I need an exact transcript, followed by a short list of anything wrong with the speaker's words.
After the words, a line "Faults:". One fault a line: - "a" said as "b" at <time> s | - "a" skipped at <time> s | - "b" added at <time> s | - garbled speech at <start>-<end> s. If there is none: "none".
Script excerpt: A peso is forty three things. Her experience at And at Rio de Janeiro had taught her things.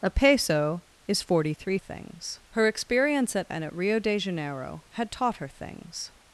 A peso is forty three things. Her experience at And at Rio de Janeiro had taught her things.
Faults:
none